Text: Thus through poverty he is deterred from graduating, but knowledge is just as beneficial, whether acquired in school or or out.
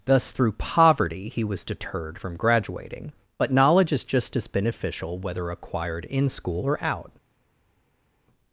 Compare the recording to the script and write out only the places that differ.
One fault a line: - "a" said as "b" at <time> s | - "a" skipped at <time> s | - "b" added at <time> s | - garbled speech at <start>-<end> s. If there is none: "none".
- "is" said as "was" at 1.4 s
- "or" skipped at 6.8 s